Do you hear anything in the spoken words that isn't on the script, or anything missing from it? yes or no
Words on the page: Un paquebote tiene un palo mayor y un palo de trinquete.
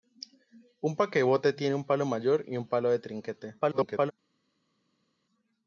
yes